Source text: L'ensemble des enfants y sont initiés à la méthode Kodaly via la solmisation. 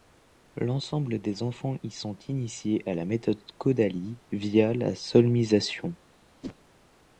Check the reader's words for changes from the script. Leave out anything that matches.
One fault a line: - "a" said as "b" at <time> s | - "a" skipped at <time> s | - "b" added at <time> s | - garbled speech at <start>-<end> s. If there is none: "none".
none